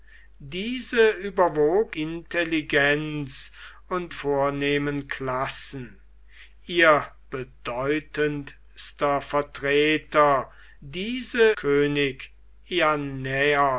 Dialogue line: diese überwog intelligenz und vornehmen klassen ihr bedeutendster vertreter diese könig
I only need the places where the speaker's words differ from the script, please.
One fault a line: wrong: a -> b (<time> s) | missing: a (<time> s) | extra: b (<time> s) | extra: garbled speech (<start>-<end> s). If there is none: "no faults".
no faults